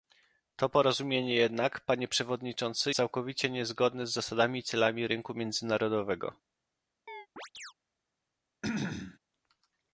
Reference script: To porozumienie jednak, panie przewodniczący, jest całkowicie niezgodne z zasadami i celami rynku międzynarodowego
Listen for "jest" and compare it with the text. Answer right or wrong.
wrong